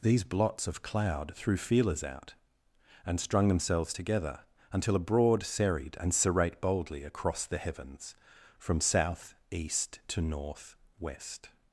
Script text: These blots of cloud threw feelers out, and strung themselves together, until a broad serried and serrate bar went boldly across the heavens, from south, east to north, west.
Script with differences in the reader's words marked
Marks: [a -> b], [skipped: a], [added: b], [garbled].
These blots of cloud threw feelers out, and strung themselves together, until a broad serried and serrate [skipped: bar went] boldly across the heavens, from south, east to north, west.